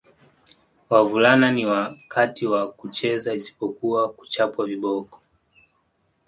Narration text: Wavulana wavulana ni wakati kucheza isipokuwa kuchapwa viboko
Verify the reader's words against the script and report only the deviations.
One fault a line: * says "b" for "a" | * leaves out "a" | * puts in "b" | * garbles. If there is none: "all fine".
* leaves out "wavulana"
* puts in "wa"